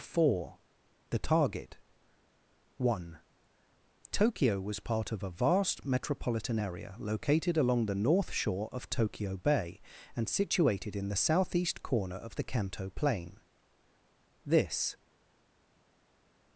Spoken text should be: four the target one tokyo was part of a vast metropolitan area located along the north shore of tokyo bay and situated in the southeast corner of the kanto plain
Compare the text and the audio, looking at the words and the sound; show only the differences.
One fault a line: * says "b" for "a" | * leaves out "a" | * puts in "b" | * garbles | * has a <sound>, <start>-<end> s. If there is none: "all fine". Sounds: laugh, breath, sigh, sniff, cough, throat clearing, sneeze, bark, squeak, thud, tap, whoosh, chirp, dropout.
* puts in "this"